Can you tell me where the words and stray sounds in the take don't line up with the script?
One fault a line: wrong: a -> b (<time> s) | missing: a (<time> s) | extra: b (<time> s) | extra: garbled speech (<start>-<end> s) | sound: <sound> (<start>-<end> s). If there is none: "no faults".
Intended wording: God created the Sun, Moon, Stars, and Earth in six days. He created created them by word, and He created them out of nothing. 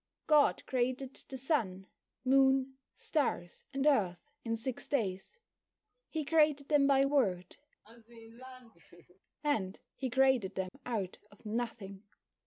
missing: created (6.7 s)
sound: laugh (7.8-9.2 s)
sound: dropout (10.7-10.7 s)